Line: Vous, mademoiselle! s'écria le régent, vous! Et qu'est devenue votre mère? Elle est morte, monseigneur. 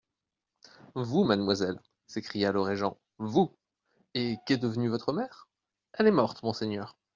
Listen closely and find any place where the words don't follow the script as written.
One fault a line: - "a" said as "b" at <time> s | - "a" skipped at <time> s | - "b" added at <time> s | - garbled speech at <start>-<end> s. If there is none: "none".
none